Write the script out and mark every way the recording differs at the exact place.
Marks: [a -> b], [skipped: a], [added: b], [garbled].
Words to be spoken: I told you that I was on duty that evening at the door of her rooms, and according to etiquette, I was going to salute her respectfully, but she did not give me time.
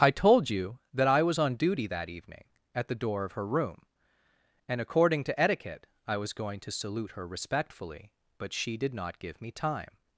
I told you that I was on duty that evening at the door of her [rooms, -> room] and according to etiquette, I was going to salute her respectfully, but she did not give me time.